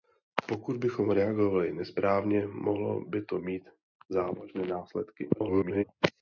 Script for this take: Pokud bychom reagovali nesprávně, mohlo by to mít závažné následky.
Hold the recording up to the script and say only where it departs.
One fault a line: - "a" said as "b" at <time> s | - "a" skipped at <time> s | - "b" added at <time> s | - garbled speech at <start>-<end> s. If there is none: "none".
- garbled speech at 5.3-5.8 s